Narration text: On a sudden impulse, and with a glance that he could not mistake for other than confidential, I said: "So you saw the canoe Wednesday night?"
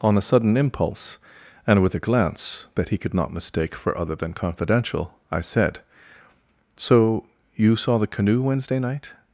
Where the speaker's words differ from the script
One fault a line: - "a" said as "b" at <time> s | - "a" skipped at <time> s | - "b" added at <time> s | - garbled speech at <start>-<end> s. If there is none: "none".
none